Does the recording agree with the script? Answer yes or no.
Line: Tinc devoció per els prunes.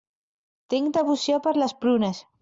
no